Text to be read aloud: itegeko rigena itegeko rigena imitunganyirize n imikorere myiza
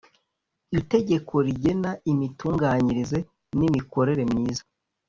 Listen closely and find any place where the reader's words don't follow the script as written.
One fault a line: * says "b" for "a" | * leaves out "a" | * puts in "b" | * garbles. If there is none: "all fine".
* leaves out "itegeko rigena"